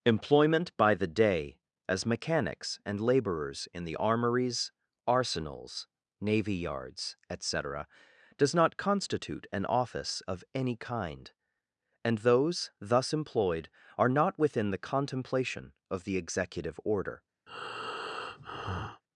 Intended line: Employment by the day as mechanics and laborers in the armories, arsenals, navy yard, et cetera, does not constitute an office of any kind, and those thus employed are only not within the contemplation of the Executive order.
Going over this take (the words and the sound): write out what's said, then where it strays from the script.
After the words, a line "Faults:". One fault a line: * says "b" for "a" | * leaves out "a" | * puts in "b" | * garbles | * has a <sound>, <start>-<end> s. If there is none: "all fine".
Employment by the day as mechanics and laborers in the armories, arsenals, navy yards, et cetera, does not constitute an office of any kind, and those thus employed are not within the contemplation of the Executive order.
Faults:
* says "yards" for "yard"
* leaves out "only"
* has a breath, 17.5-19.0 s